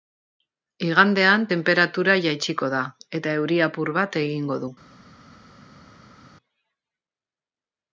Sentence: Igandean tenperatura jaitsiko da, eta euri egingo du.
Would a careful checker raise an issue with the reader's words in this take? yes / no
yes